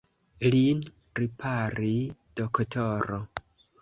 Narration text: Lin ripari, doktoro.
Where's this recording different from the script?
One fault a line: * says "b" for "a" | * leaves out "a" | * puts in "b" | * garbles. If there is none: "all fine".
all fine